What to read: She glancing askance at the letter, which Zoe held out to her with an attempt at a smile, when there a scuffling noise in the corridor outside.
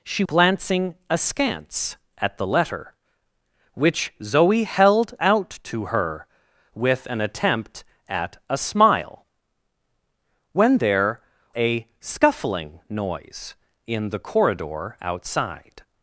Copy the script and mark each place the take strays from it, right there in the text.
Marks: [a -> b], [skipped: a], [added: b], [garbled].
She glancing askance at the letter, which Zoe held out to her with an attempt at a smile, when there a scuffling noise in the corridor outside.